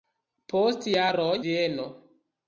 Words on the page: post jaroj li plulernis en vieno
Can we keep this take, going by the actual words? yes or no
no